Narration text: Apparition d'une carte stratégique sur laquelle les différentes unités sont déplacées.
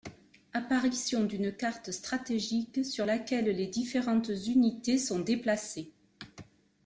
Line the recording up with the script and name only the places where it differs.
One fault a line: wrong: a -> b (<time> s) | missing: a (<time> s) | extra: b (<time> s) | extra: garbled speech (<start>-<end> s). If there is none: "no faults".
no faults